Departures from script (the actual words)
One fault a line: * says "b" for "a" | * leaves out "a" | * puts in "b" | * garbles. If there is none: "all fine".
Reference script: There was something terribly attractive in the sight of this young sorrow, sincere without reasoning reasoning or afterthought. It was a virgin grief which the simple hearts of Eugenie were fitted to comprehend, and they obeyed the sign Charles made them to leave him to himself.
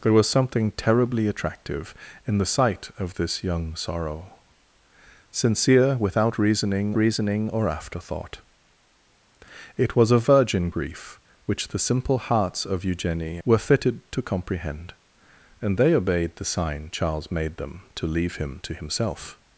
all fine